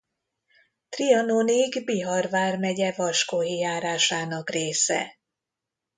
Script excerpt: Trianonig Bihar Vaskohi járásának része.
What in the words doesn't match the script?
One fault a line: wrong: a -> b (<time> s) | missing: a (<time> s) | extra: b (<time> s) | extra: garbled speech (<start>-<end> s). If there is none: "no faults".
extra: vármegye (2.3 s)